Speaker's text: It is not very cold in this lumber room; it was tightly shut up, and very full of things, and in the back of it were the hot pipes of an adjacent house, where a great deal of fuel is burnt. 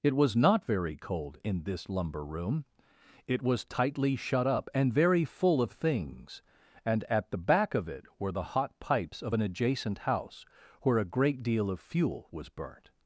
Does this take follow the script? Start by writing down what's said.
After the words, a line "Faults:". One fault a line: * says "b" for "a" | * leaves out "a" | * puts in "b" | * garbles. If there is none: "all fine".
It was not very cold in this lumber room; it was tightly shut up, and very full of things, and at the back of it were the hot pipes of an adjacent house, where a great deal of fuel was burnt.
Faults:
* says "was" for "is"
* says "at" for "in"
* says "was" for "is"